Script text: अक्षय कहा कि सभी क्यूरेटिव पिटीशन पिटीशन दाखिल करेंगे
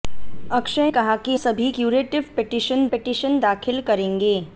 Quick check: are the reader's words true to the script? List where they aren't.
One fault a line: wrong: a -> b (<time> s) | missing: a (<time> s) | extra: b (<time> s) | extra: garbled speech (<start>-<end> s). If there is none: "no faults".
no faults